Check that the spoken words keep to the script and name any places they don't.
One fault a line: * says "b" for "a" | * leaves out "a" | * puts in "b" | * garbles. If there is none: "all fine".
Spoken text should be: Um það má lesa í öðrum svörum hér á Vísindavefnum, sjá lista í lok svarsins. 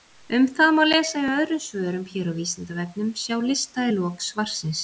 all fine